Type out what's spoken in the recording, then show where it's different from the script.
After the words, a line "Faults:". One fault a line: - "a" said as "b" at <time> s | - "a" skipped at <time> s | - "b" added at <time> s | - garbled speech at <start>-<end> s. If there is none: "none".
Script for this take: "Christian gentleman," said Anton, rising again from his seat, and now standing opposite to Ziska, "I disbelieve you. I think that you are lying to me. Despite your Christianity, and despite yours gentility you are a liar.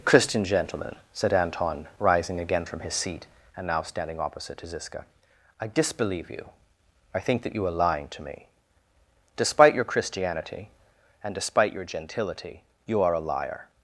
"Christian gentleman," said Anton, rising again from his seat, and now standing opposite to Ziska, "I disbelieve you. I think that you are lying to me. Despite your Christianity, and despite your gentility you are a liar.
Faults:
- "yours" said as "your" at 11.7 s